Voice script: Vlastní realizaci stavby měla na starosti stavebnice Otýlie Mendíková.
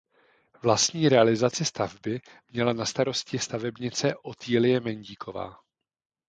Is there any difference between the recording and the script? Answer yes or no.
no